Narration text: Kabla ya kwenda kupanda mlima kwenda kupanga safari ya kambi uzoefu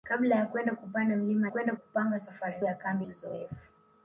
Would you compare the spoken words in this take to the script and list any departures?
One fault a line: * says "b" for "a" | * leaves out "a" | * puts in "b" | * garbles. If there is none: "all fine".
all fine